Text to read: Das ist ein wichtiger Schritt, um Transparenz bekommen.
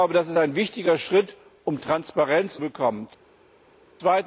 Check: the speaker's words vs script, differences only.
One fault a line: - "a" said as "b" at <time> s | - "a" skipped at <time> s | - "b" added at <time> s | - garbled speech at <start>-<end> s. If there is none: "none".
none